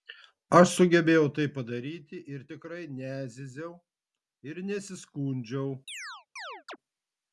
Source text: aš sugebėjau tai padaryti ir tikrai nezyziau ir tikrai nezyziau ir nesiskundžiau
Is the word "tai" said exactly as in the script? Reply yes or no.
yes